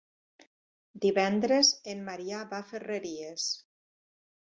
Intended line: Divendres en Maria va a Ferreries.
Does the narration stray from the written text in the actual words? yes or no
no